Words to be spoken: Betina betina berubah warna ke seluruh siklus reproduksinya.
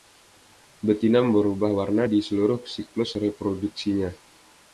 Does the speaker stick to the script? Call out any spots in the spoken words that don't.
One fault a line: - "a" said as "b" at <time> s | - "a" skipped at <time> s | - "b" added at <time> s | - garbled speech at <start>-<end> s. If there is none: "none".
- "betina" skipped at 1.2 s
- "ke" said as "di" at 2.1 s